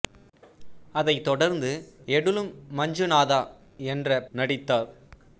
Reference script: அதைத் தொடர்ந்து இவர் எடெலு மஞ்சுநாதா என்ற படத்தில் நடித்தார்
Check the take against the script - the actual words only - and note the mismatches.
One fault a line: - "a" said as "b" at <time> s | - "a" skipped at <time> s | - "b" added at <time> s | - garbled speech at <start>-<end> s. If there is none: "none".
- "இவர்" skipped at 1.7 s
- "படத்தில்" skipped at 4.2 s